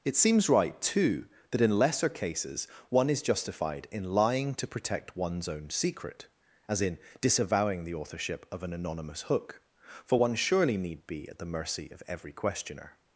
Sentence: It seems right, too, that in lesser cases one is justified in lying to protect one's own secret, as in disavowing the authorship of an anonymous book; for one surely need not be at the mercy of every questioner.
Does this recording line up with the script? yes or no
no